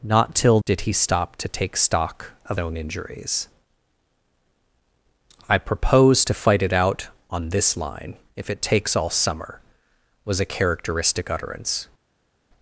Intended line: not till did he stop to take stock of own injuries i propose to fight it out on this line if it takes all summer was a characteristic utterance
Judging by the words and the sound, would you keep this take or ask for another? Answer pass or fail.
pass